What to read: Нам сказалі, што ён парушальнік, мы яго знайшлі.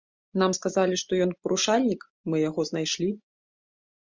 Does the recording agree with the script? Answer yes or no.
yes